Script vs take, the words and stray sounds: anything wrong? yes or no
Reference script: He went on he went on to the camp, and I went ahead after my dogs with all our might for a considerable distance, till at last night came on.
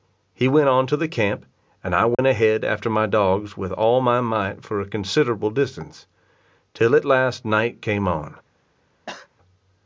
yes